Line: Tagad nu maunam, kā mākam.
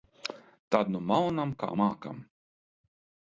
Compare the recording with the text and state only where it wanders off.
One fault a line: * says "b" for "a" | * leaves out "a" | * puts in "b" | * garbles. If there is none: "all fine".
* says "Tad" for "Tagad"